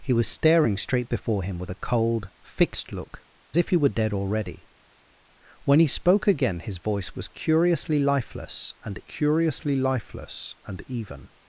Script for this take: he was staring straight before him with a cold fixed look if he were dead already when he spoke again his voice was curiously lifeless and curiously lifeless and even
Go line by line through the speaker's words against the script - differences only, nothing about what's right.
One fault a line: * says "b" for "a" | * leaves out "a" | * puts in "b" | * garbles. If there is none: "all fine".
all fine